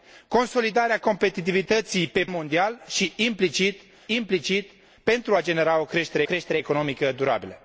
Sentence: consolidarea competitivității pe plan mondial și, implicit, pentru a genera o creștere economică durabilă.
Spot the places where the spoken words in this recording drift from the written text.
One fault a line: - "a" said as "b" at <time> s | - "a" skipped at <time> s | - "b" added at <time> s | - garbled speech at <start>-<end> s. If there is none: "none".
- "plan" skipped at 2.2 s
- "implicit" added at 4.1 s
- "creștere" added at 6.2 s